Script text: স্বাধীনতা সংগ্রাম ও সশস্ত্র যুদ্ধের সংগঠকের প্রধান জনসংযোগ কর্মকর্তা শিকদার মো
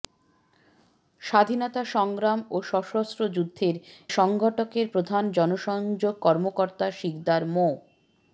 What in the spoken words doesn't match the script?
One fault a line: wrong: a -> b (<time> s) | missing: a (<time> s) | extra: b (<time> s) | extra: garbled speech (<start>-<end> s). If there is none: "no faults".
no faults